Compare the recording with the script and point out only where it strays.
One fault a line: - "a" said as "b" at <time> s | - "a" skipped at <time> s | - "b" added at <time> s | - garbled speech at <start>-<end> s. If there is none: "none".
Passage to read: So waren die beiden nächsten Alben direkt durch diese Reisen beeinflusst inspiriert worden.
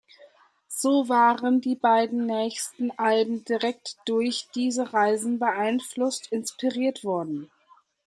none